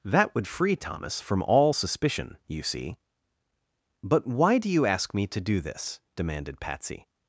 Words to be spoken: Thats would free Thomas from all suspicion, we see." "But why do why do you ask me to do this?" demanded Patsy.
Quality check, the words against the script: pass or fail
fail